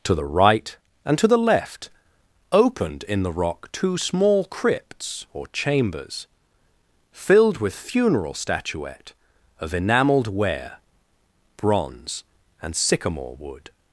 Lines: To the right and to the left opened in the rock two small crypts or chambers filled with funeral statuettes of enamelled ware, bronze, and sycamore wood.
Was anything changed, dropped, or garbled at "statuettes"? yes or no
yes